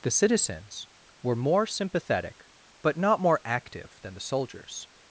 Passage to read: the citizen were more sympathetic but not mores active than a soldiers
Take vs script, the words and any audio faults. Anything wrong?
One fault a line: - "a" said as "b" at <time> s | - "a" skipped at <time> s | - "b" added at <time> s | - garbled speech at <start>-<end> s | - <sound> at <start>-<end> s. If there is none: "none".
- "citizen" said as "citizens" at 0.1 s
- "mores" said as "more" at 3.2 s
- "a" said as "the" at 4.2 s